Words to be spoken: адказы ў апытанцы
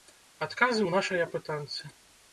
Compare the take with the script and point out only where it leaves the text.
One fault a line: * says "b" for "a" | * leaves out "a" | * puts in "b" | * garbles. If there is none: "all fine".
* puts in "нашай"